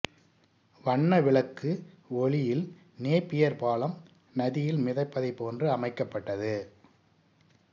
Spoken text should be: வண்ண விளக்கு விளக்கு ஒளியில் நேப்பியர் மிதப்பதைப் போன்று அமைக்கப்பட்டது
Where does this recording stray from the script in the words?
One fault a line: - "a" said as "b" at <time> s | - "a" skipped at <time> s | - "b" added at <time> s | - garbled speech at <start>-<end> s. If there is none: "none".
- "விளக்கு" skipped at 1.7 s
- "பாலம் நதியில்" added at 3.6 s